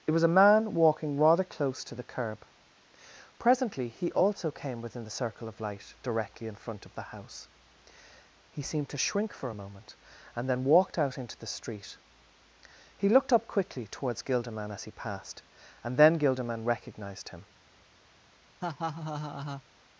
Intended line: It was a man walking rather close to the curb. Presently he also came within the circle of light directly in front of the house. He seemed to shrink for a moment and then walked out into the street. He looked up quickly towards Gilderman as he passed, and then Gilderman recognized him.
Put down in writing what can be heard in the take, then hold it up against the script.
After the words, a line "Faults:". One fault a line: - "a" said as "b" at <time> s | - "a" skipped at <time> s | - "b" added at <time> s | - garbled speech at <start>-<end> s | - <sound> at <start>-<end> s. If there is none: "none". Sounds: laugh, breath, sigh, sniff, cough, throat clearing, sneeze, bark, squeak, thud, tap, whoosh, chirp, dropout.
It was a man walking rather close to the curb. Presently he also came within the circle of light directly in front of the house. He seemed to shrink for a moment and then walked out into the street. He looked up quickly towards Gilderman as he passed, and then Gilderman recognized him.
Faults:
- laugh at 18.6-19.6 s